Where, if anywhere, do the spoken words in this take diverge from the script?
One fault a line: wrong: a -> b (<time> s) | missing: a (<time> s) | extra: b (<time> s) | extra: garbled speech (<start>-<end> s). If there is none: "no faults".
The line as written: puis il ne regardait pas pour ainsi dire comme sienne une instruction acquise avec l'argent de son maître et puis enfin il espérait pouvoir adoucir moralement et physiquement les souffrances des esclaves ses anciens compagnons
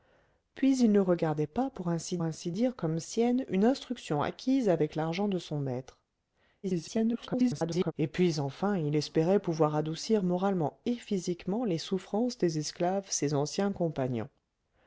extra: ainsi (2.2 s)
extra: garbled speech (6.6-7.9 s)